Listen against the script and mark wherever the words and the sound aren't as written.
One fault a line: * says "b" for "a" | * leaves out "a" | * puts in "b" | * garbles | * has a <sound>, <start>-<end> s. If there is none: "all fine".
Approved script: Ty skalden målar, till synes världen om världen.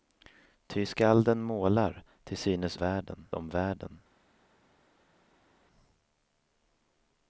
all fine